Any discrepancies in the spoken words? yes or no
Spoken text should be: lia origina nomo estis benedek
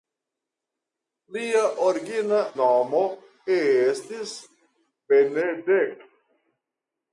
no